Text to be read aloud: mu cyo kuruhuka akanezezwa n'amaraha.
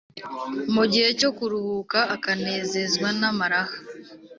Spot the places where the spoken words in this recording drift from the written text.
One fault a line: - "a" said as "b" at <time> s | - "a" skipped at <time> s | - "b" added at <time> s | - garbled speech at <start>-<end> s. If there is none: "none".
- "gihe" added at 0.9 s